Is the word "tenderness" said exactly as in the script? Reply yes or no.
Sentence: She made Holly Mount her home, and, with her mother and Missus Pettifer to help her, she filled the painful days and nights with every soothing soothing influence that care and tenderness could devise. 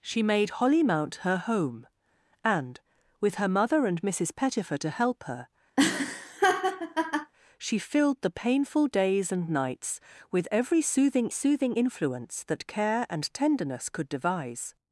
yes